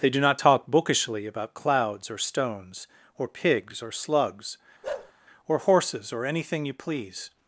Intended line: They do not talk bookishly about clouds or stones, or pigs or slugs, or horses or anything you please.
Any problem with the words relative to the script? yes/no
no